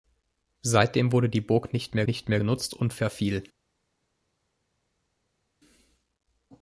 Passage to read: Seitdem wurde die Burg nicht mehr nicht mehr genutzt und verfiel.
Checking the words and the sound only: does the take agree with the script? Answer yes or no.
yes